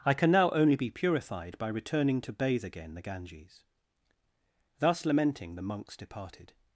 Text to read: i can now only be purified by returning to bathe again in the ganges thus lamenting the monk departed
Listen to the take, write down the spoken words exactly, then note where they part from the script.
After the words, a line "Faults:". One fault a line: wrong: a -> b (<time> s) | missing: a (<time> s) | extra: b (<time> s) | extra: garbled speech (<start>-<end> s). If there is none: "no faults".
i can now only be purified by returning to bathe again the ganges thus lamenting the monks departed
Faults:
missing: in (3.0 s)
wrong: monk -> monks (5.6 s)